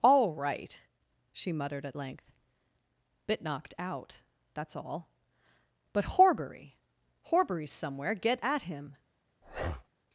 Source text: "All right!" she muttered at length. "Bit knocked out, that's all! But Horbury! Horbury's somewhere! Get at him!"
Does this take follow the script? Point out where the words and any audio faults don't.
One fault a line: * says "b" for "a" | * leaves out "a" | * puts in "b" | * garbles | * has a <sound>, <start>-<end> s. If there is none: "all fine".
* has a breath, 9.4-9.9 s